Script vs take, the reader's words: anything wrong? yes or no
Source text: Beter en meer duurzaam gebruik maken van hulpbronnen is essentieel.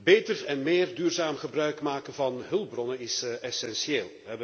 no